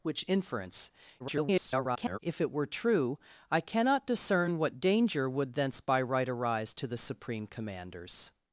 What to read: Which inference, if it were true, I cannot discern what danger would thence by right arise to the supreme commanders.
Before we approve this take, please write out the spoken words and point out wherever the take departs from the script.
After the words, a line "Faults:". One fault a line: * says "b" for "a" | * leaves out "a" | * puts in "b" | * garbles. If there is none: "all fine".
Which inference, [garbled] if it were true, I cannot discern what danger would thence by right arise to the supreme commanders.
Faults:
* garbles